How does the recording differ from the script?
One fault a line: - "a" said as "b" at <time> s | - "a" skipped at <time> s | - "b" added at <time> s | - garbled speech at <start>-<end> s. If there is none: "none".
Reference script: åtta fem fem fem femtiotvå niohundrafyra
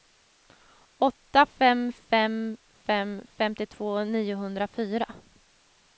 none